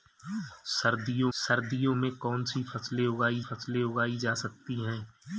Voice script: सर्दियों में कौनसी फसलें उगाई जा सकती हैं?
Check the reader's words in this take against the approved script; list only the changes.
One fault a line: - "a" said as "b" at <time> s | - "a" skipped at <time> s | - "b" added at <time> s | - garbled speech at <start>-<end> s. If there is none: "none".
- "सर्दियों" added at 1.3 s
- "फसलें उगाई" added at 3.4 s